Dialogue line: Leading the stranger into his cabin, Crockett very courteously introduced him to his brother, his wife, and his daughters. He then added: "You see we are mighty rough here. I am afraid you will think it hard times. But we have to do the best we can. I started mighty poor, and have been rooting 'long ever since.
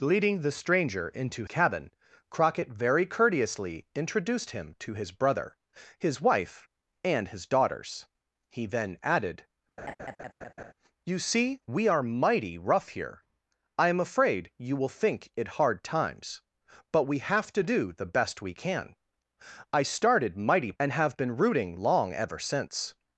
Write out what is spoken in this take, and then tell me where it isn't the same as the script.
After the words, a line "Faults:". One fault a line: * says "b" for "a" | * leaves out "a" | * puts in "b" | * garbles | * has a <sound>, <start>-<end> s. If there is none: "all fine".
Leading the stranger into cabin, Crockett very courteously introduced him to his brother, his wife, and his daughters. He then added: "You see we are mighty rough here. I am afraid you will think it hard times. But we have to do the best we can. I started mighty and have been rooting 'long ever since.
Faults:
* leaves out "his"
* has a laugh, 9.8-10.7 s
* leaves out "poor"